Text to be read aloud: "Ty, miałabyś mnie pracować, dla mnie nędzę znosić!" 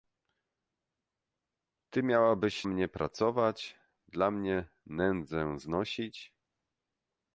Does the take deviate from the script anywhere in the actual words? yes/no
no